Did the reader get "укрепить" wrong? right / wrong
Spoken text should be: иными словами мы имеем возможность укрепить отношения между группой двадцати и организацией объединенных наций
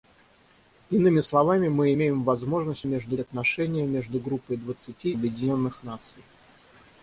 wrong